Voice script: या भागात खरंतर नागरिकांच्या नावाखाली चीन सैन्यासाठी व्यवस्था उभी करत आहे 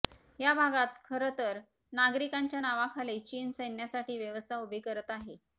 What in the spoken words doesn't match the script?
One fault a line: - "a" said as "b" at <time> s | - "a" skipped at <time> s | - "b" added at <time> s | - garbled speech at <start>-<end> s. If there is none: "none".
none